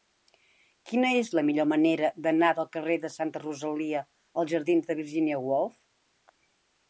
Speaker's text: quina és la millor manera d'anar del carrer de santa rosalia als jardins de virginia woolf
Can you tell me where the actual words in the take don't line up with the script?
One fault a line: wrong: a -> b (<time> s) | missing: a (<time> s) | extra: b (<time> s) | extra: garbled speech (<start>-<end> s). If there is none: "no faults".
no faults